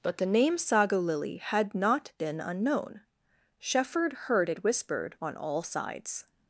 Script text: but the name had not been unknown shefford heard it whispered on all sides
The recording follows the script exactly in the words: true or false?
false